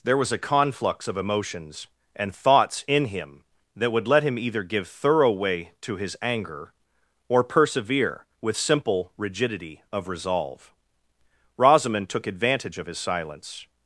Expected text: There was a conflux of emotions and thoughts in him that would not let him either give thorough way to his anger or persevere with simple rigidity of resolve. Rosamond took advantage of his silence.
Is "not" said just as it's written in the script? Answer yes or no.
no